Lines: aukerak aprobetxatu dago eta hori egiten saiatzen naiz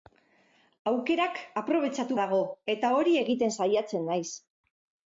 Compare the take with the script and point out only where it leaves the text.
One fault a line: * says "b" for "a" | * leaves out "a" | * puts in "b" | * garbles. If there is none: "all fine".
all fine